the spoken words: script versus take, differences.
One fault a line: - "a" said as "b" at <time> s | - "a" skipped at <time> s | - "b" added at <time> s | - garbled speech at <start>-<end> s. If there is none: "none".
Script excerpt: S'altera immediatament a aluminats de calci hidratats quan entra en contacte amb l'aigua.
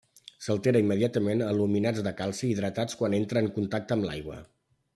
none